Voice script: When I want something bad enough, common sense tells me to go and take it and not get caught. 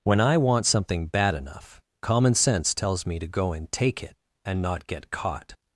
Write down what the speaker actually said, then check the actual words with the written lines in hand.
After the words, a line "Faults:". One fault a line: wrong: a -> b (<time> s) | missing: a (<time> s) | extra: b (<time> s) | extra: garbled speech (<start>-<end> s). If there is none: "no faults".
When I want something bad enough, common sense tells me to go and take it and not get caught.
Faults:
no faults